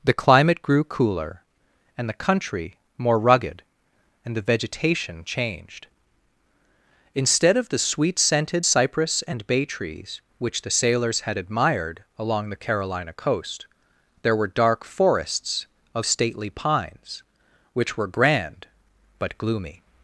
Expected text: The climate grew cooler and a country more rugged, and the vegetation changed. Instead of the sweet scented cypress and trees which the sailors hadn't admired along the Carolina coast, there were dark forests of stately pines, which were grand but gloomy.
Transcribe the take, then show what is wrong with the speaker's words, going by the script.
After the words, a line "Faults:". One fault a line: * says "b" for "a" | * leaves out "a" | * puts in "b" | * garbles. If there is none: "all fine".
The climate grew cooler and the country more rugged, and the vegetation changed. Instead of the sweet scented cypress and bay trees which the sailors had admired along the Carolina coast, there were dark forests of stately pines, which were grand but gloomy.
Faults:
* says "the" for "a"
* puts in "bay"
* says "had" for "hadn't"